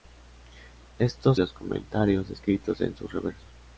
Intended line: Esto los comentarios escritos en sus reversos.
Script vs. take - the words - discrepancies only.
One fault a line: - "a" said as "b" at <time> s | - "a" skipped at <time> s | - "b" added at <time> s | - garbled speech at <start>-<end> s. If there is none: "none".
none